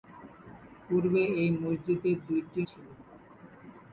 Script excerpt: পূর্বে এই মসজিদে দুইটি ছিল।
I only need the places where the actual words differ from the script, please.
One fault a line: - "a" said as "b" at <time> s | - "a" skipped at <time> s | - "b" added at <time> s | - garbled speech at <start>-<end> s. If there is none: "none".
none